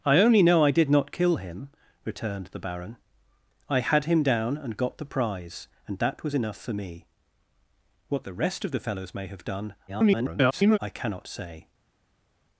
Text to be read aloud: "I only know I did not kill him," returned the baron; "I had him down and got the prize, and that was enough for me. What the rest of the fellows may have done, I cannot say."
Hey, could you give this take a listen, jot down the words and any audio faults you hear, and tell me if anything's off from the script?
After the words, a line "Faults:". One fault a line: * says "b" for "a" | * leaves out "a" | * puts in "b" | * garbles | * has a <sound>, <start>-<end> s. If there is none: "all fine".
"I only know I did not kill him," returned the baron; "I had him down and got the prize, and that was enough for me. What the rest of the fellows may have done, [garbled] I cannot say."
Faults:
* garbles